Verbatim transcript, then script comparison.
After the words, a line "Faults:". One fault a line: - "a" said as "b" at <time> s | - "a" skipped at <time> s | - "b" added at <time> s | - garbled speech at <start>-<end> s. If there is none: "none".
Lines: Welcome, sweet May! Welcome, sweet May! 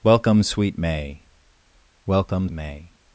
Welcome, sweet May! Welcome, May!
Faults:
- "sweet" skipped at 2.5 s